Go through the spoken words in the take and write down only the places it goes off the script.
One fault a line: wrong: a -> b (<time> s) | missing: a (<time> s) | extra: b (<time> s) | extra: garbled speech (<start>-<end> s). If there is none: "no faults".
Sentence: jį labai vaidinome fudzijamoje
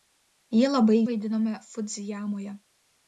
no faults